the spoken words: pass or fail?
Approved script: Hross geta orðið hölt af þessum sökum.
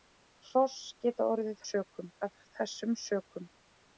fail